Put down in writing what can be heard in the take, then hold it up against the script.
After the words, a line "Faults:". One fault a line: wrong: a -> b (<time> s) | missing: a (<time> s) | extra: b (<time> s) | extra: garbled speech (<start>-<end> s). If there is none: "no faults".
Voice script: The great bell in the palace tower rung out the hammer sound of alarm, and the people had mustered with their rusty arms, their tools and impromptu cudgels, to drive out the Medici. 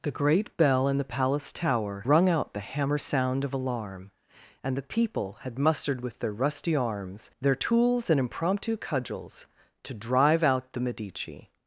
The great bell in the palace tower rung out the hammer sound of alarm, and the people had mustered with their rusty arms, their tools and impromptu cudgels, to drive out the Medici.
Faults:
no faults